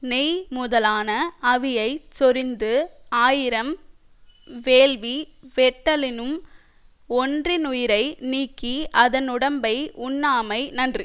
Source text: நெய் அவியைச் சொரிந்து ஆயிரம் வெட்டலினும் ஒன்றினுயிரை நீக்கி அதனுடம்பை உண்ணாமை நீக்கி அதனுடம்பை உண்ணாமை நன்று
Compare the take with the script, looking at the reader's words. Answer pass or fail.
fail